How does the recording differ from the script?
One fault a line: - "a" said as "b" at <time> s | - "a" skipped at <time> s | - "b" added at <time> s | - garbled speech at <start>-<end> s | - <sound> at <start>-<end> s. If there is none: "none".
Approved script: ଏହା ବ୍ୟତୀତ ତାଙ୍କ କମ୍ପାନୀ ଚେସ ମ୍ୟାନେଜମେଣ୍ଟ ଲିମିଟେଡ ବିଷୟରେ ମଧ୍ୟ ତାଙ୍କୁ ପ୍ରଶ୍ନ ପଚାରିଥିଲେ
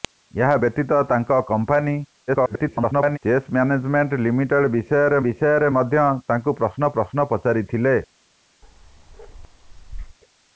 - garbled speech at 2.3-3.2 s
- "ବିଷୟରେ" added at 5.2 s
- "ପ୍ରଶ୍ନ" added at 7.0 s
- bark at 8.6-10.2 s